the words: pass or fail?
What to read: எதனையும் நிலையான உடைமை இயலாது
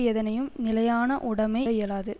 pass